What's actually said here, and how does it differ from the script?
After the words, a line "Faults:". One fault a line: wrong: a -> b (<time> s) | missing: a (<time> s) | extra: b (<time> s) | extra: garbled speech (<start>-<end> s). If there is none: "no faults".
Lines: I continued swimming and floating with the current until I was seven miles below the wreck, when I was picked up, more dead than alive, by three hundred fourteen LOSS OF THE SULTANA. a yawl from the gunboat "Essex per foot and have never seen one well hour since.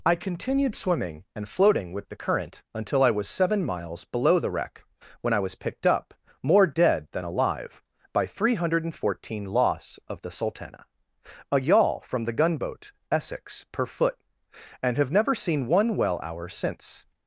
I continued swimming and floating with the current until I was seven miles below the wreck, when I was picked up, more dead than alive, by three hundred fourteen LOSS OF THE SULTANA. a yawl from the gunboat "Essex per foot and have never seen one well hour since.
Faults:
no faults